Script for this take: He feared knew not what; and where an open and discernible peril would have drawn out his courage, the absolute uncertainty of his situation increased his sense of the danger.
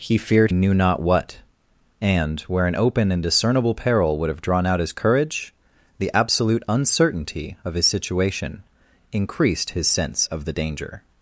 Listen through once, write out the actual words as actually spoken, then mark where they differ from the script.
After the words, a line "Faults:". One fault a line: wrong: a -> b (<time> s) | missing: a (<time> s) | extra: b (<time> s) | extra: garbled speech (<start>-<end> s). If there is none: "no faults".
He feared knew not what; and where an open and discernible peril would have drawn out his courage, the absolute uncertainty of his situation increased his sense of the danger.
Faults:
no faults